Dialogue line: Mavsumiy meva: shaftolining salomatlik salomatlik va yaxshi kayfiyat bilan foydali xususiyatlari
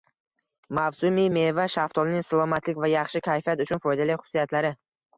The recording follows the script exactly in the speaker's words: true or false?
false